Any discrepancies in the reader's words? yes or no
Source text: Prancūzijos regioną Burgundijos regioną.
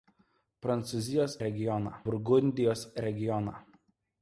no